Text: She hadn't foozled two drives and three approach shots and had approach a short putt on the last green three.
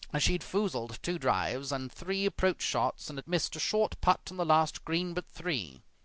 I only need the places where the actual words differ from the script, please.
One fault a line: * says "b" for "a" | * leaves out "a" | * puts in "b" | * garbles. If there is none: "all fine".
* says "had" for "hadn't"
* says "missed" for "approach"
* puts in "but"